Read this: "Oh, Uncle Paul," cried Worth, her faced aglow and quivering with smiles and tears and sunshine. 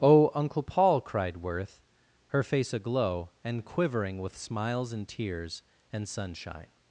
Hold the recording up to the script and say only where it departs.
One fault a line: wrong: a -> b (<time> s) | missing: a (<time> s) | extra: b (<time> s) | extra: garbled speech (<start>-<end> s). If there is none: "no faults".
wrong: faced -> face (2.4 s)